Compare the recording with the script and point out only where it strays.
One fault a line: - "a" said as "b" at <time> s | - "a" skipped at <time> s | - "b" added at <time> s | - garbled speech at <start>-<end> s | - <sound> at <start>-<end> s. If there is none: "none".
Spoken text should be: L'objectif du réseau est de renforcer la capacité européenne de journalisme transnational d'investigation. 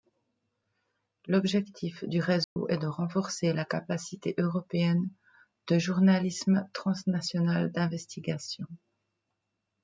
- dropout at 2.4-2.6 s